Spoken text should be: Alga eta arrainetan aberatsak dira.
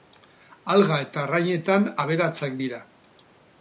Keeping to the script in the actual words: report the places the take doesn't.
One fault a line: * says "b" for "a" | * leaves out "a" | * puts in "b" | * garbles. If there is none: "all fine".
all fine